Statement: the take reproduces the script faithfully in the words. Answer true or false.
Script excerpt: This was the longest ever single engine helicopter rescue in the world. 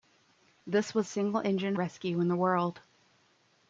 false